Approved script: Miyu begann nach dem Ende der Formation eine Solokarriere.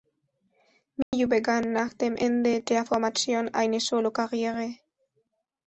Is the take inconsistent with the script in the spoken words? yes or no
no